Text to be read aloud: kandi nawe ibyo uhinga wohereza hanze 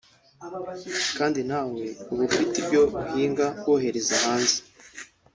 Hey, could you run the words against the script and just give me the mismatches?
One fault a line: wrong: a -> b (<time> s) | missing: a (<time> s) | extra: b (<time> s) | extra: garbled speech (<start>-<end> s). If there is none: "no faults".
extra: uba ufite (2.1 s)